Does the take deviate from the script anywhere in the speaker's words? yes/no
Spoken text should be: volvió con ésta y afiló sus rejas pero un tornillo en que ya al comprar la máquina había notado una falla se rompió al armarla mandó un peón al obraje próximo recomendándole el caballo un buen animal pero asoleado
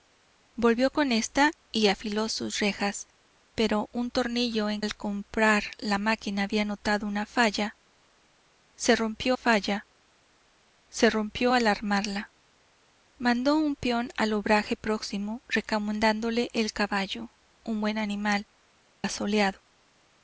yes